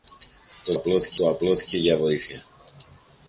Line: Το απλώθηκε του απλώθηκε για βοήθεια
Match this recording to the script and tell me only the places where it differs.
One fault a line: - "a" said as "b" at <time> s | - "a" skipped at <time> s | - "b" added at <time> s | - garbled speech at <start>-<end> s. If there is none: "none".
none